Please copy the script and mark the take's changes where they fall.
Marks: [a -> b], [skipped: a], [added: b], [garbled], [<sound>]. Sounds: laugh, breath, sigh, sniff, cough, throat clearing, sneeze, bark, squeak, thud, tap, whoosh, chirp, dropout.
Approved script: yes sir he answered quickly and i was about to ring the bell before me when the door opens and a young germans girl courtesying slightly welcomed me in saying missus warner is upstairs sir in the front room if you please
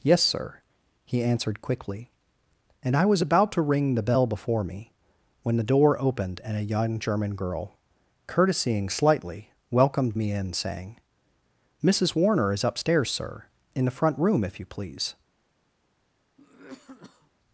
yes sir he answered quickly and i was about to ring the bell before me when the door [opens -> opened] and a young [germans -> german] girl courtesying slightly welcomed me in saying missus warner is upstairs sir in the front room if you please [cough]